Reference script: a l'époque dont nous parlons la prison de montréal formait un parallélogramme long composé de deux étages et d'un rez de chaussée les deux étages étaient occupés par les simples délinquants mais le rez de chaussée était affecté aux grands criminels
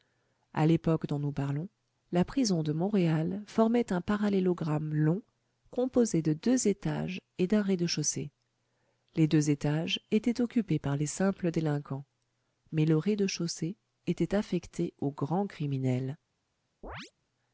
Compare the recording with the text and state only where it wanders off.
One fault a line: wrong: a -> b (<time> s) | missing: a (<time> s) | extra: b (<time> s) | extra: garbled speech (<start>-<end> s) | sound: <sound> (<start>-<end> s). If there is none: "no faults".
sound: chirp (16.8-17.1 s)